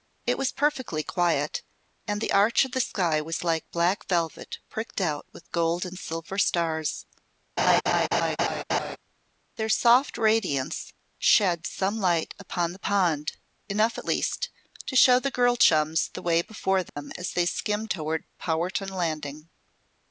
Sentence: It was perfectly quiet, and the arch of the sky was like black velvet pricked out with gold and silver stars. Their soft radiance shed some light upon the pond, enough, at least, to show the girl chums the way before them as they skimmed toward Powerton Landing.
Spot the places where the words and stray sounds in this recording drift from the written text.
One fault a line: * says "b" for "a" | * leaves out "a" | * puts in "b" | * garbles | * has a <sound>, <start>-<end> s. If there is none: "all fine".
* has a laugh, 7.6-9.0 s
* has a dropout, 16.9-17.0 s